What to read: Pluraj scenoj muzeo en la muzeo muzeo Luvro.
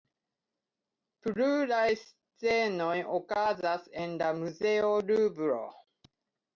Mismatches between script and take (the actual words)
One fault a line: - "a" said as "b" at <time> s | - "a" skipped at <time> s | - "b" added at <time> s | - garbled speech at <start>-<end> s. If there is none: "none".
- "muzeo" said as "okazas" at 3.2 s
- "muzeo" skipped at 5.0 s